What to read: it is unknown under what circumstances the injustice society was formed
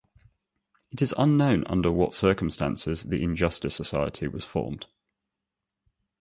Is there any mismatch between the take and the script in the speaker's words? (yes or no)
no